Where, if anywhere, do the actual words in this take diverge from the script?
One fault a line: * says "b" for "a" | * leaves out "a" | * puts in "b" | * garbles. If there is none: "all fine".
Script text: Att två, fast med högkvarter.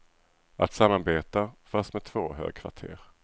* says "samarbeta" for "två"
* puts in "två"